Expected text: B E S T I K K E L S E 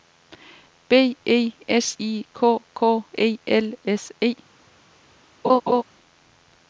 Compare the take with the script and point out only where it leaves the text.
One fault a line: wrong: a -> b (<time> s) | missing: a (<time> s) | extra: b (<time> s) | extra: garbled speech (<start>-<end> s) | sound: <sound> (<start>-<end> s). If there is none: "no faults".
missing: T (2.0 s)
sound: laugh (5.4-5.8 s)